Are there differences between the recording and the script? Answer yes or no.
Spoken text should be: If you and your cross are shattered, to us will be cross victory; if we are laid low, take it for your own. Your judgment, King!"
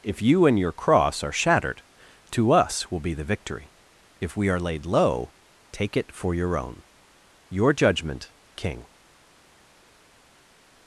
yes